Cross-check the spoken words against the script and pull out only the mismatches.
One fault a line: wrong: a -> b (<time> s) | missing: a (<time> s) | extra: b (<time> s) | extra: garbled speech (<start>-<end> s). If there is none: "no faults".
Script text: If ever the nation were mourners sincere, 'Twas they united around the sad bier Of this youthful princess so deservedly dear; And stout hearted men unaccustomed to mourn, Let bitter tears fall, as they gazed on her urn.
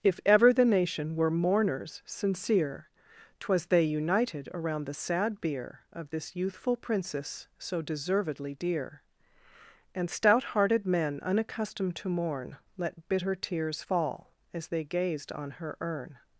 no faults